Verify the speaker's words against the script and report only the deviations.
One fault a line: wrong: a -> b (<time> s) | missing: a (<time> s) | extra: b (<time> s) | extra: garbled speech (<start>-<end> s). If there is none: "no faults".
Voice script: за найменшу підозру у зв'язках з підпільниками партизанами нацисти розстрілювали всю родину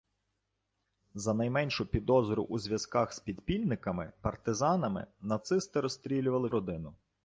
missing: всю (6.5 s)